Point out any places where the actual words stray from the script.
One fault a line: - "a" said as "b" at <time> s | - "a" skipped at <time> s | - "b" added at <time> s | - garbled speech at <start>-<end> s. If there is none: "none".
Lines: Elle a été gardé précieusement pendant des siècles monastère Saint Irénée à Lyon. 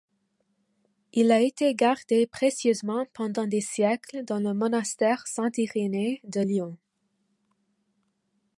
- "Elle" said as "Il" at 1.1 s
- "dans le" added at 4.2 s
- "à" said as "de" at 6.2 s